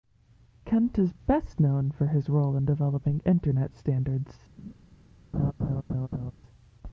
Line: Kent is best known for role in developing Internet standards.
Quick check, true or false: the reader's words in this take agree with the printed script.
false